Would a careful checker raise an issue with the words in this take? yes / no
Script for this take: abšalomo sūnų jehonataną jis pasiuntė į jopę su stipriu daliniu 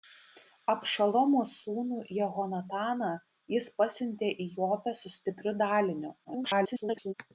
yes